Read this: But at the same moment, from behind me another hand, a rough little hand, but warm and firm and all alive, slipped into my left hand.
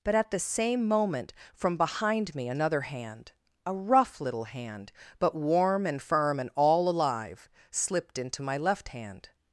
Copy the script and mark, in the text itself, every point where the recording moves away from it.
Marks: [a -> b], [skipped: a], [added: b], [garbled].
But at the same moment, from behind me another hand, a rough little hand, but warm and firm and all alive, slipped into my left hand.